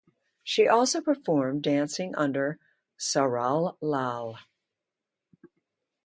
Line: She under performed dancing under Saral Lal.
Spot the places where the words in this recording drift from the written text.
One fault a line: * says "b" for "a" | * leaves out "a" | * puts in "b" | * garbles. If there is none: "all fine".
* says "also" for "under"